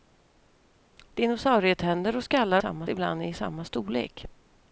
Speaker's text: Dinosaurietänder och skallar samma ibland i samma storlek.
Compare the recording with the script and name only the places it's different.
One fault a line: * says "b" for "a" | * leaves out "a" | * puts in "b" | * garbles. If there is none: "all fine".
all fine